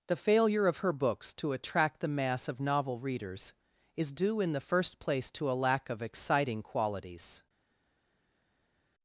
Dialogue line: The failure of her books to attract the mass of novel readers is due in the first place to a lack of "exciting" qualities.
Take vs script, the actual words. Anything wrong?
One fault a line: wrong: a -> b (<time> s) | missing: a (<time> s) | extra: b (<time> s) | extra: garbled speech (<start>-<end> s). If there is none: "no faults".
no faults